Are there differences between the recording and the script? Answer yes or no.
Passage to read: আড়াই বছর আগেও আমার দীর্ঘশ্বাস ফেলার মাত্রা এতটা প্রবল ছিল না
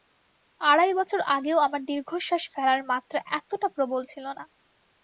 no